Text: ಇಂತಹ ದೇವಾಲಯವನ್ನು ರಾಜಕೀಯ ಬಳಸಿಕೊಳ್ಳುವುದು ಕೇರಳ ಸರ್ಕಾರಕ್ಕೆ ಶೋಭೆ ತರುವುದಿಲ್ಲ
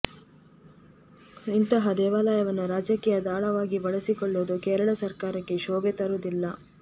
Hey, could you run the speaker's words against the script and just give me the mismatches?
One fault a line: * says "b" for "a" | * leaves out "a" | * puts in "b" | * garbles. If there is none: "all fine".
* puts in "ದಾಳವಾಗಿ"